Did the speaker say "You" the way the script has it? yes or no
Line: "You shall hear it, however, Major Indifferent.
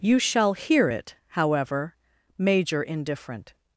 yes